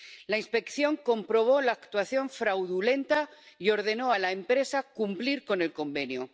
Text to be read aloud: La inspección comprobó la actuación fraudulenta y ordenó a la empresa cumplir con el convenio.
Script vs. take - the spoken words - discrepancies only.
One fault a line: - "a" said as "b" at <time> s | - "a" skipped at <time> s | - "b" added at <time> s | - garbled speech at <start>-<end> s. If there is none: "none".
none